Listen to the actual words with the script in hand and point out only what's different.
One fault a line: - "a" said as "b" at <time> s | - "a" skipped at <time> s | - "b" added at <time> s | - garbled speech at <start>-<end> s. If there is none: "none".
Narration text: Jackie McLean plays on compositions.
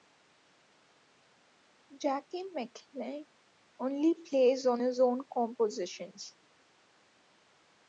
- "only" added at 3.8 s
- "his own" added at 4.8 s